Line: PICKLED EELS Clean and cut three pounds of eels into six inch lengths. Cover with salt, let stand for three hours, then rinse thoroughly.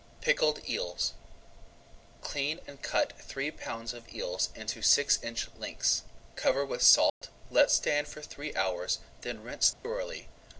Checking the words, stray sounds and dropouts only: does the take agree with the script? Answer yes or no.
no